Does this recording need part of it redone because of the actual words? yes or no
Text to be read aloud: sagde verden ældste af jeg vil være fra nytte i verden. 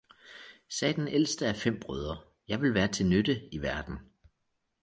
yes